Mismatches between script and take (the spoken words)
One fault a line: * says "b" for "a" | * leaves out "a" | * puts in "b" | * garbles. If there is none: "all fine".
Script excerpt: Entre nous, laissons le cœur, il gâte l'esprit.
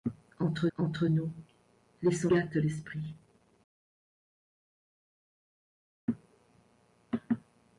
* puts in "entre"
* leaves out "le cœur il"